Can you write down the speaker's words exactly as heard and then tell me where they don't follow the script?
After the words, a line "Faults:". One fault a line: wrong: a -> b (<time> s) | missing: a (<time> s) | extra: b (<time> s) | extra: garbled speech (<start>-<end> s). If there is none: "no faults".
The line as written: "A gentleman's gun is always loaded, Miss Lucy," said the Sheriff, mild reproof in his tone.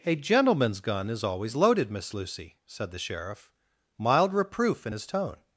"A gentleman's gun is always loaded, Miss Lucy," said the Sheriff, mild reproof in his tone.
Faults:
no faults